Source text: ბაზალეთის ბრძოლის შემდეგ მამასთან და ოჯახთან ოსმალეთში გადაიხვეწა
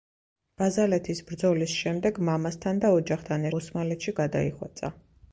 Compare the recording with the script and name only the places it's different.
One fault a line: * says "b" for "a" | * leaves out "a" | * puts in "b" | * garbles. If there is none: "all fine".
all fine